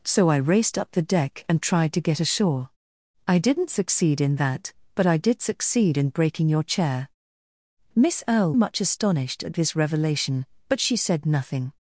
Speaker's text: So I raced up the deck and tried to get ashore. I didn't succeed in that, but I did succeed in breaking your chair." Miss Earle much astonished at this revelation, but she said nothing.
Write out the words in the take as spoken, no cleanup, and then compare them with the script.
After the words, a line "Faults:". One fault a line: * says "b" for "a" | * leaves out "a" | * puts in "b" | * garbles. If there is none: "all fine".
So I raced up the deck and tried to get ashore. I didn't succeed in that, but I did succeed in breaking your chair." Miss Earle much astonished at this revelation, but she said nothing.
Faults:
all fine